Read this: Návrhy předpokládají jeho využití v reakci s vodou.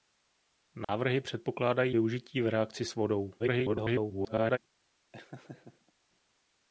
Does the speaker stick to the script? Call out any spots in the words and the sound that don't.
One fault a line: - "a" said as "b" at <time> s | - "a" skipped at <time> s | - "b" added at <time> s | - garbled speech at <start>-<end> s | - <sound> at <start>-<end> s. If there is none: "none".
- dropout at 0.8-0.9 s
- "jeho" skipped at 1.9 s
- garbled speech at 3.4-4.6 s
- laugh at 5.1-5.9 s